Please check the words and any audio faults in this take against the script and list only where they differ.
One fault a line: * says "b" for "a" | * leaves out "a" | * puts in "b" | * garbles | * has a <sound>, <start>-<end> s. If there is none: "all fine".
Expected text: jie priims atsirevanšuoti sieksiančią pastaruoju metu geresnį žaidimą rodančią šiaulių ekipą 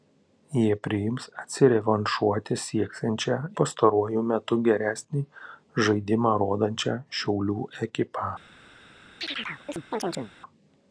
* has a chirp, 9.2-10.3 s